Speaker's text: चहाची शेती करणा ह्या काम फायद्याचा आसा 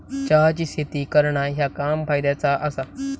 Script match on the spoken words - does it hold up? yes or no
yes